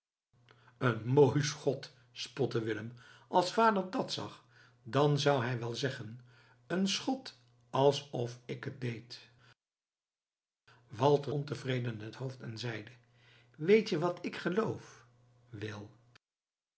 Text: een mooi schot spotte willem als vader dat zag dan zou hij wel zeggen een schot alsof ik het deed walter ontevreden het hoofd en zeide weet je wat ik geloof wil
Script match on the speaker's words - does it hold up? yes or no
yes